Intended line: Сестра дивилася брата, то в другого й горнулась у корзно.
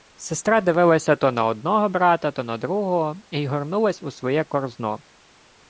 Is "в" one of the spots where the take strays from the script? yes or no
yes